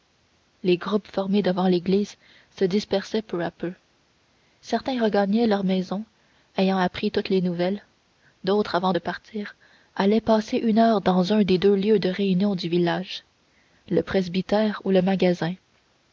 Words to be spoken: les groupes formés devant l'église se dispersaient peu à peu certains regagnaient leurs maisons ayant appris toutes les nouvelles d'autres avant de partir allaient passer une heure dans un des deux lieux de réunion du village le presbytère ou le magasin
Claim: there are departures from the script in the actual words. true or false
false